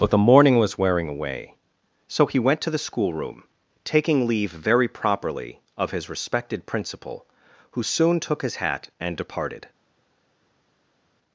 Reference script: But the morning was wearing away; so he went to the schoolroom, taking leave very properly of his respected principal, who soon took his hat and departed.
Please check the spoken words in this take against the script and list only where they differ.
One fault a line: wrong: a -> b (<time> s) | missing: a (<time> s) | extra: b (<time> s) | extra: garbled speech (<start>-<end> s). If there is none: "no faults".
no faults